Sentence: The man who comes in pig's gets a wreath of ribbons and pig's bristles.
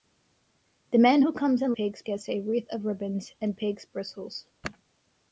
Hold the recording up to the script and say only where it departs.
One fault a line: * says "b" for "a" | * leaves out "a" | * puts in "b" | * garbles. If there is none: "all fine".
all fine